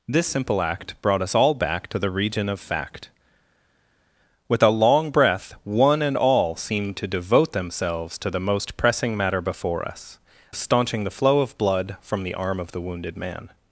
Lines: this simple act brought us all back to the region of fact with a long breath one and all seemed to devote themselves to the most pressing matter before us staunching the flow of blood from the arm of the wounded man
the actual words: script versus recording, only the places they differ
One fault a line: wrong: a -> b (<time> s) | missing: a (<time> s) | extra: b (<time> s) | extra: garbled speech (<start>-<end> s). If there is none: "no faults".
no faults